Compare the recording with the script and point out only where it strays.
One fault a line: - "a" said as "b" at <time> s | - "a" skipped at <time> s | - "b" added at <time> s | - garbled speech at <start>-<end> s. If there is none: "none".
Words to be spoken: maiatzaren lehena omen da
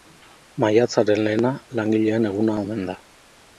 - "langileen eguna" added at 1.8 s